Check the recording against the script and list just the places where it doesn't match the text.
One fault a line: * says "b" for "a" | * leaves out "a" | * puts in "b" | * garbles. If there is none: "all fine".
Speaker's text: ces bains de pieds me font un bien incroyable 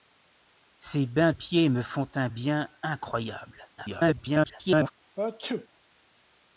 * leaves out "de"
* garbles